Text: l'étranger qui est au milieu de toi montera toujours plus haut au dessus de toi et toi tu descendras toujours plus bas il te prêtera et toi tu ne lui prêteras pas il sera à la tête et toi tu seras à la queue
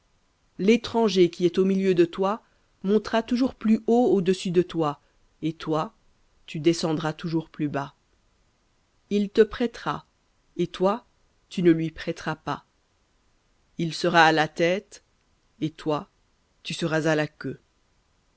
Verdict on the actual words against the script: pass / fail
pass